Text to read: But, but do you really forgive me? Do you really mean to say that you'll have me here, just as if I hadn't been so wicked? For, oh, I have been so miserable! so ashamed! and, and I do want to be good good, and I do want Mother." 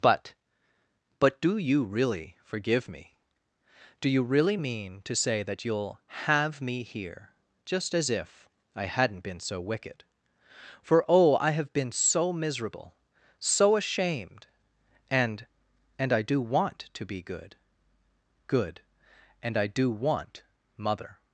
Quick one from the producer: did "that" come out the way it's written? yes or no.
yes